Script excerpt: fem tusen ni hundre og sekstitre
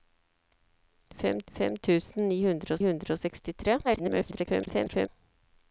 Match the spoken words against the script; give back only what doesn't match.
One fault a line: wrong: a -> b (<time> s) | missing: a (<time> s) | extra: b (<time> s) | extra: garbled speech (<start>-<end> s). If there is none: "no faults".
extra: fem (1.6 s)
extra: hundre (2.9 s)
extra: garbled speech (3.8-5.1 s)